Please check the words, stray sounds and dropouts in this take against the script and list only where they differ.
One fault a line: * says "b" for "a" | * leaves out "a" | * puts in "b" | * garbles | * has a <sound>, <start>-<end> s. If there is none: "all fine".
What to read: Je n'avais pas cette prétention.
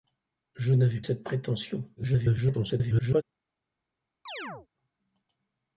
* leaves out "pas"
* garbles
* has a chirp, 4.3-4.7 s